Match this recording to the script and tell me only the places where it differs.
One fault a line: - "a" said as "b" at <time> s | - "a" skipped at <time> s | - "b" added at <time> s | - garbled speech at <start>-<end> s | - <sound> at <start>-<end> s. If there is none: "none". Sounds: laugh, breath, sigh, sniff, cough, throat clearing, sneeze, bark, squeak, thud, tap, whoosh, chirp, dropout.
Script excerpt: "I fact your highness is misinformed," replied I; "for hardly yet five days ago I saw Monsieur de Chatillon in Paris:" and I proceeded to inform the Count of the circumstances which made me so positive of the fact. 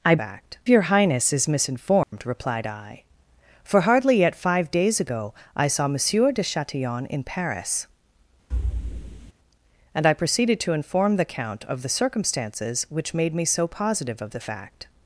- dropout at 2.0-2.1 s
- thud at 8.5-9.3 s